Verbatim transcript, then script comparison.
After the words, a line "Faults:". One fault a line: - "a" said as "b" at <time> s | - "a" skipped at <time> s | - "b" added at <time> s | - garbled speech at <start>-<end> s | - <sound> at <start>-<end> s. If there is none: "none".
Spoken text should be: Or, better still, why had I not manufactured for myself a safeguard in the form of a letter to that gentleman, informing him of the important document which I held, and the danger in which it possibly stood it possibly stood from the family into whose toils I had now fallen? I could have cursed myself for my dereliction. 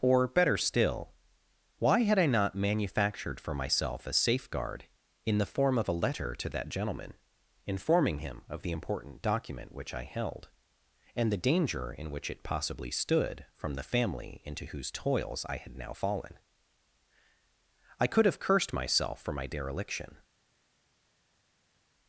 Or, better still, why had I not manufactured for myself a safeguard in the form of a letter to that gentleman, informing him of the important document which I held, and the danger in which it possibly stood from the family into whose toils I had now fallen? I could have cursed myself for my dereliction.
Faults:
- "it possibly stood" skipped at 13.4 s